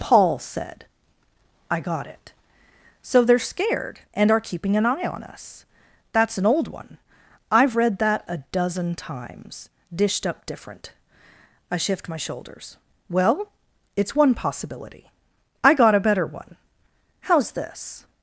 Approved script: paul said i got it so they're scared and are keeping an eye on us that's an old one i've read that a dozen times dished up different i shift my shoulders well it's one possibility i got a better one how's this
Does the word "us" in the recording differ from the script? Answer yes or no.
no